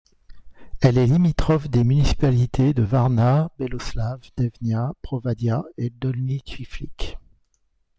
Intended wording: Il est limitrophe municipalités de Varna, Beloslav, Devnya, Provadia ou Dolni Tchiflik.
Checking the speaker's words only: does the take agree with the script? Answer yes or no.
no